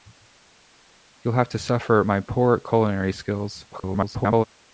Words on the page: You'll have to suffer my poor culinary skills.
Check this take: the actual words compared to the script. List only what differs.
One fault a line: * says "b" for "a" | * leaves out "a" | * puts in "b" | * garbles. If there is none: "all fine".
* garbles